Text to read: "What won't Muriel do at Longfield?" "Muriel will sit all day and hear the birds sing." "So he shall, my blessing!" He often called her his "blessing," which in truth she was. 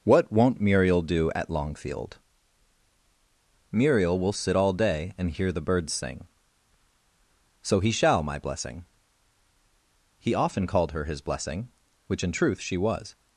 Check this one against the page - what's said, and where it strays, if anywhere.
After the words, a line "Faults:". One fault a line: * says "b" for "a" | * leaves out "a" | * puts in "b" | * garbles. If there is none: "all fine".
"What won't Muriel do at Longfield?" "Muriel will sit all day and hear the birds sing." "So he shall, my blessing!" He often called her his "blessing," which in truth she was.
Faults:
all fine